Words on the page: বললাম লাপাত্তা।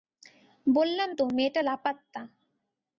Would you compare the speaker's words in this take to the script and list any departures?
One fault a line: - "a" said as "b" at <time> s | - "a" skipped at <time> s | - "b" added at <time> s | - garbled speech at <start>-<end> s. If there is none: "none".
- "তো মেয়েটা" added at 1.1 s